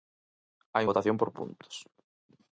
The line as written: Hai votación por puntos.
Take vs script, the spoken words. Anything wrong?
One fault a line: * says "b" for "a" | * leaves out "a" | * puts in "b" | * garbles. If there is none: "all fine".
all fine